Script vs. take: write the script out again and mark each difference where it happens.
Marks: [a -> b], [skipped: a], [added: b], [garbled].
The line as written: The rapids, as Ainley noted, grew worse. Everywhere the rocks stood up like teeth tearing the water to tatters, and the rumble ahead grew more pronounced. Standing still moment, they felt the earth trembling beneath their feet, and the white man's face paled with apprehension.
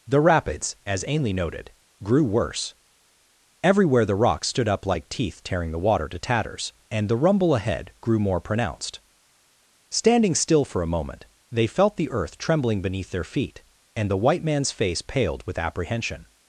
The rapids, as Ainley noted, grew worse. Everywhere the rocks stood up like teeth tearing the water to tatters, and the rumble ahead grew more pronounced. Standing still [added: for a] moment, they felt the earth trembling beneath their feet, and the white man's face paled with apprehension.